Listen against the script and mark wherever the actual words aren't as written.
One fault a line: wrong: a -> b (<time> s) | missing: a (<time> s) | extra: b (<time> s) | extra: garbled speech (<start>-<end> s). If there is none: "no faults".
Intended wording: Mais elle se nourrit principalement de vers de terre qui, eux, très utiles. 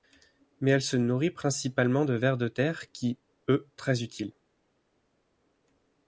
no faults